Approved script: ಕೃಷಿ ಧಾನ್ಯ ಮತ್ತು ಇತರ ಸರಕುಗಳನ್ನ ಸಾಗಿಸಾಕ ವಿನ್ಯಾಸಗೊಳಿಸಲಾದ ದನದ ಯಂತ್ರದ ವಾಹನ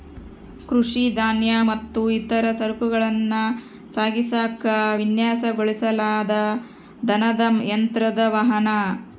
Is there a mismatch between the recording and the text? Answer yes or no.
no